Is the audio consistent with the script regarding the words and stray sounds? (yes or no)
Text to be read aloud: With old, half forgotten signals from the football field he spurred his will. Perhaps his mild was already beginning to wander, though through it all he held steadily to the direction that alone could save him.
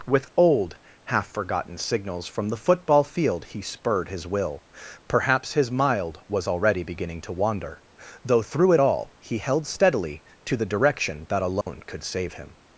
no